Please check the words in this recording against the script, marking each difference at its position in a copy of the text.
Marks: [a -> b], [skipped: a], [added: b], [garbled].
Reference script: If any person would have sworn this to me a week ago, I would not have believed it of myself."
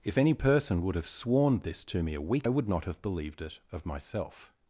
If any person would have sworn this to me a week [skipped: ago, I] would not have believed it of myself."